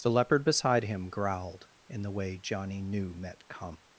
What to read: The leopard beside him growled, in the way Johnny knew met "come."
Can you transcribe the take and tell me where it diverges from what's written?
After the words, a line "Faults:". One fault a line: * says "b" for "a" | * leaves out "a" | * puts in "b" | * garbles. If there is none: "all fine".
The leopard beside him growled, in the way Johnny knew met "come."
Faults:
all fine